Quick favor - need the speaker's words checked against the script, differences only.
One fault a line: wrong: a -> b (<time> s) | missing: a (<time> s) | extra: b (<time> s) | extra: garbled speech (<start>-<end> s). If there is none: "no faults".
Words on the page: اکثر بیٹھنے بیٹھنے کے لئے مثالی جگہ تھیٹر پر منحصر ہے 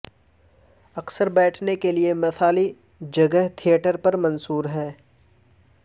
missing: بیٹھنے (1.8 s)